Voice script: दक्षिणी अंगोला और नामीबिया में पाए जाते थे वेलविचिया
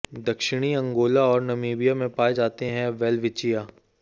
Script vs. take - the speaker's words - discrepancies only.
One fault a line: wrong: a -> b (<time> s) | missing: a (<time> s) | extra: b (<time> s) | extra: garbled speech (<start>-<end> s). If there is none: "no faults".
wrong: थे -> हैं (2.6 s)